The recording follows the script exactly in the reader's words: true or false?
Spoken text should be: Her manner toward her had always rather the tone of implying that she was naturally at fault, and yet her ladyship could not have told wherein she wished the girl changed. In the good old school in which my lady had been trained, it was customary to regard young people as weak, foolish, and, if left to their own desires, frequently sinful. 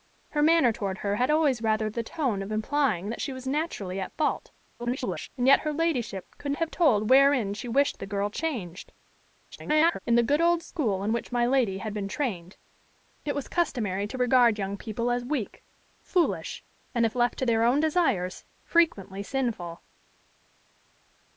false